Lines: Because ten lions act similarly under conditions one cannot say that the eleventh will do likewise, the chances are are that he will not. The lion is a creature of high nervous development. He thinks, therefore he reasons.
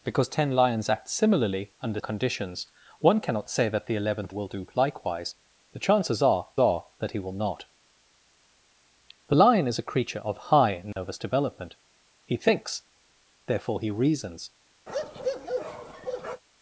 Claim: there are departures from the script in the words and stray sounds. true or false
true